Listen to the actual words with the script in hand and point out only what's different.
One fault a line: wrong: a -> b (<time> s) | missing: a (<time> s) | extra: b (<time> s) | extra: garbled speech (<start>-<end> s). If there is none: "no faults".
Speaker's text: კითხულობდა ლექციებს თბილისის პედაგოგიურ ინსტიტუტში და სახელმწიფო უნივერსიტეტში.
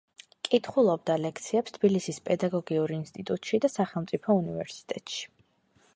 no faults